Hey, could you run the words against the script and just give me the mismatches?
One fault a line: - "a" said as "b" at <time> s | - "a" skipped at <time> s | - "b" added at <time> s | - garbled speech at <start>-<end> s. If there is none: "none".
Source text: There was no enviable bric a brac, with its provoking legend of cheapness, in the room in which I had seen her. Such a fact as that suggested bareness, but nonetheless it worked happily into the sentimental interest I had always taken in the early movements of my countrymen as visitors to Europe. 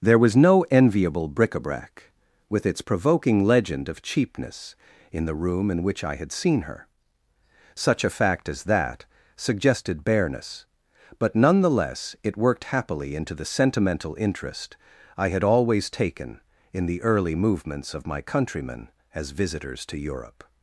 none